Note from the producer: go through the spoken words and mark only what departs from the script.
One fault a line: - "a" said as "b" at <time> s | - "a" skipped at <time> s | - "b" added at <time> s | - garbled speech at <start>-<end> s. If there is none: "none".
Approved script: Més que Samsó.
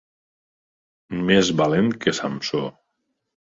- "valent" added at 1.6 s